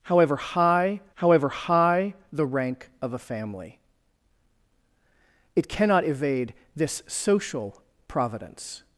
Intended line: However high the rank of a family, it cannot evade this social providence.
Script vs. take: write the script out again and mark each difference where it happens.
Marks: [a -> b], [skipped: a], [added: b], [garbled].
However high [added: however high] the rank of a family, it cannot evade this social providence.